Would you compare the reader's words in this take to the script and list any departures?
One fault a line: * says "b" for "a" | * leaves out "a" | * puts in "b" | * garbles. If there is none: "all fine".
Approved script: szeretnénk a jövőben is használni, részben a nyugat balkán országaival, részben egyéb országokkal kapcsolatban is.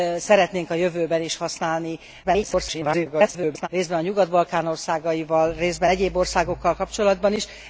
* garbles